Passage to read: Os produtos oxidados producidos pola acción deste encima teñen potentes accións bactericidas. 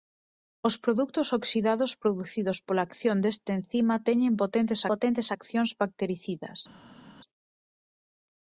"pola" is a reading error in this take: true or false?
false